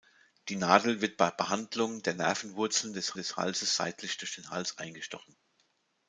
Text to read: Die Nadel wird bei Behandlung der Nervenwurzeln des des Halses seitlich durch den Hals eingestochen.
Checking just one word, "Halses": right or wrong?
right